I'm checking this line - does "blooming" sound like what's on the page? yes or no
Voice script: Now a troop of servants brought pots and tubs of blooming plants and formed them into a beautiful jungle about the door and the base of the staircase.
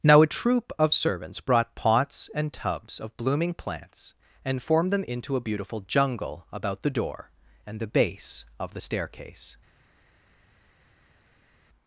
yes